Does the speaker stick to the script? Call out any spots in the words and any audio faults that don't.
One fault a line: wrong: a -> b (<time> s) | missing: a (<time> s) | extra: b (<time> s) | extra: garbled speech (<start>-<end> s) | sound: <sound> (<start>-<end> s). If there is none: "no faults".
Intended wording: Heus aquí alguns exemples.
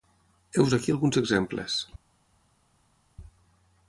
no faults